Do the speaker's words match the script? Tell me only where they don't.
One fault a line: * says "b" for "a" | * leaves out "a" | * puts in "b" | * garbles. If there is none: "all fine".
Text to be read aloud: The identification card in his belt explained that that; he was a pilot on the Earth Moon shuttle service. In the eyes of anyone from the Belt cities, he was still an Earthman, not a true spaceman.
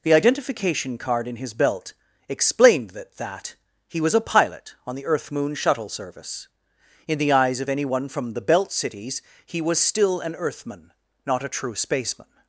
all fine